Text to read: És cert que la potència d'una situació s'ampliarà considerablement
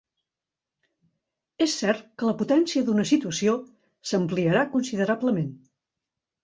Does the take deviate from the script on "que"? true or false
false